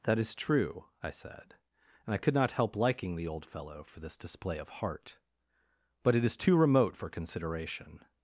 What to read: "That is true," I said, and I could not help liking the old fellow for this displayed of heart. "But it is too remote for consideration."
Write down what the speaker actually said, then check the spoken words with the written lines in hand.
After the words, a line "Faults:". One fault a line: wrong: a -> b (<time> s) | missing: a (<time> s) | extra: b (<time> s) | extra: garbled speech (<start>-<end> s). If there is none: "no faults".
"That is true," I said, and I could not help liking the old fellow for this display of heart. "But it is too remote for consideration."
Faults:
wrong: displayed -> display (4.2 s)